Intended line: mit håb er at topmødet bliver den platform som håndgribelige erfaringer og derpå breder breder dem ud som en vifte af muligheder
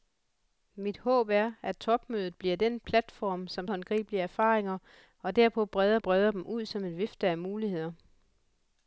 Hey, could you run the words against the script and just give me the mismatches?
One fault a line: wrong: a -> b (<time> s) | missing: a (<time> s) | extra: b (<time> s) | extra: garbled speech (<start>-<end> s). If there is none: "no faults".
no faults